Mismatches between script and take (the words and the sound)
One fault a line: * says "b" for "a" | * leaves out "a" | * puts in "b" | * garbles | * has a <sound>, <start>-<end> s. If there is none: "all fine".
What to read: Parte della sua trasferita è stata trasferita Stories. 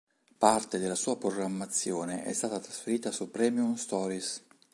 * says "programmazione" for "trasferita"
* puts in "su Premium"